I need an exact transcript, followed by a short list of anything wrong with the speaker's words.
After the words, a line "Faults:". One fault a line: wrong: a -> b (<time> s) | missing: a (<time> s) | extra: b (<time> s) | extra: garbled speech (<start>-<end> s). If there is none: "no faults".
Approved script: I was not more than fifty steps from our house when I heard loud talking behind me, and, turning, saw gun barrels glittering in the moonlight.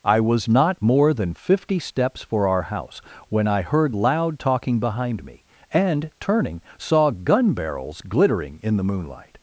I was not more than fifty steps for our house when I heard loud talking behind me, and, turning, saw gun barrels glittering in the moonlight.
Faults:
wrong: from -> for (2.2 s)